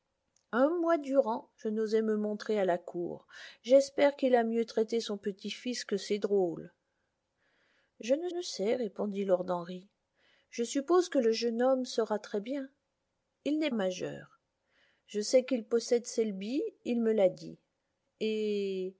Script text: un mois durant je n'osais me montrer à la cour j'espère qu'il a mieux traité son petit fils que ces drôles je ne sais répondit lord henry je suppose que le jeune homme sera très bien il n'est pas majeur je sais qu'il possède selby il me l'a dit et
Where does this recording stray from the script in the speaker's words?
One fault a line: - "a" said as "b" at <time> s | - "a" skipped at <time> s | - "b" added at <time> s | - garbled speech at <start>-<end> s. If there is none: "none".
- "ne" added at 8.3 s
- "pas" skipped at 13.7 s